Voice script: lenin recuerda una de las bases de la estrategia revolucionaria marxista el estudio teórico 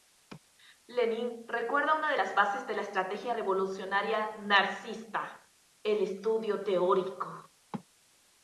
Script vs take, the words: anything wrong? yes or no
no